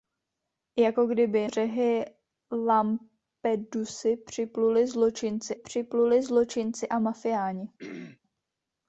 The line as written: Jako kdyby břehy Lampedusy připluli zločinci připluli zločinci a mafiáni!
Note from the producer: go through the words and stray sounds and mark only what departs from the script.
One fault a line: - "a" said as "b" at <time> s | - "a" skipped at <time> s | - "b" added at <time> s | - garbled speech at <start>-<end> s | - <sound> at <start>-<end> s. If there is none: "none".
- throat clearing at 7.8-8.2 s